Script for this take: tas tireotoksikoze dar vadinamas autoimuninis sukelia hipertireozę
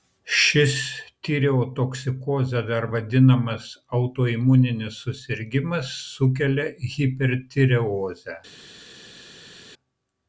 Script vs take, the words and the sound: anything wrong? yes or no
yes